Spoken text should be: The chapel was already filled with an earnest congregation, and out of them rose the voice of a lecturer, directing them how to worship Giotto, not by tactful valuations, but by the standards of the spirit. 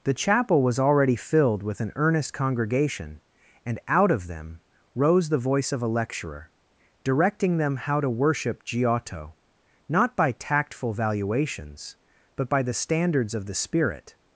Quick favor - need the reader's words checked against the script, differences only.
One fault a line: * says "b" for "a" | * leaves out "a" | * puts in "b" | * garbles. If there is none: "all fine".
all fine